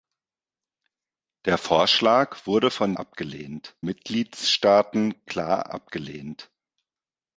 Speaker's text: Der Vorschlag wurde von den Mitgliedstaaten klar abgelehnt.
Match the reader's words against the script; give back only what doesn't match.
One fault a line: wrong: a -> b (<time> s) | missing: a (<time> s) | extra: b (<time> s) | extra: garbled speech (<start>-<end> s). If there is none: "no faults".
wrong: den -> abgelehnt (3.0 s)